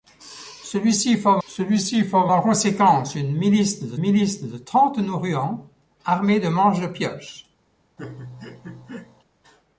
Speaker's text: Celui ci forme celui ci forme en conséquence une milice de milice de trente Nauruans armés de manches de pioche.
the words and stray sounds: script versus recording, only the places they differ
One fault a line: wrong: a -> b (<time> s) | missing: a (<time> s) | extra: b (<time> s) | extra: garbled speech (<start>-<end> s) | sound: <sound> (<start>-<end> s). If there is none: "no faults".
sound: laugh (8.0-9.2 s)